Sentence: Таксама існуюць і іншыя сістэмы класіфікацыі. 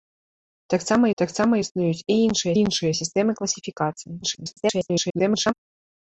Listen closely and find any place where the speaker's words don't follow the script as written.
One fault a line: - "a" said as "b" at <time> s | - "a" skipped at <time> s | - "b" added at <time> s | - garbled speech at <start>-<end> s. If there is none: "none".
- "таксама" added at 1.2 s
- "іншыя" added at 2.6 s
- garbled speech at 4.2-5.5 s